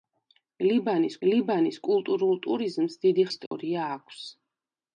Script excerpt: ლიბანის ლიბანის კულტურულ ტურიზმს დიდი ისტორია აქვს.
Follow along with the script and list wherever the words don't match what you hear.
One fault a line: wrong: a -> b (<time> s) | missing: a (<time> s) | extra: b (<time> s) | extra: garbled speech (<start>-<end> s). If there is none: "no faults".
no faults